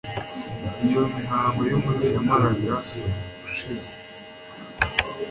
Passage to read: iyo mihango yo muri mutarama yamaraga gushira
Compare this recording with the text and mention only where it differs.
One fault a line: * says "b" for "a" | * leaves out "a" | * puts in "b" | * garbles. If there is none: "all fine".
* leaves out "mutarama"